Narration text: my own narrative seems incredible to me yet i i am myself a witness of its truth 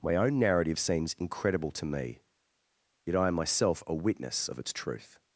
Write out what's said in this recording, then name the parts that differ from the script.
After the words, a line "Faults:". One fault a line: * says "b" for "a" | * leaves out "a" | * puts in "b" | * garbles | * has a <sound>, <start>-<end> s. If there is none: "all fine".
my own narrative seems incredible to me yet i am myself a witness of its truth
Faults:
* leaves out "i"